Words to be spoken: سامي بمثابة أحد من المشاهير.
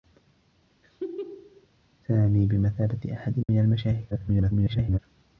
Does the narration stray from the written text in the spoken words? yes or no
yes